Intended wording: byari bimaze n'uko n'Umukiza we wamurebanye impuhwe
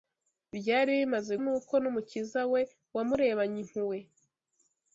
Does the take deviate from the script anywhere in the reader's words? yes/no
no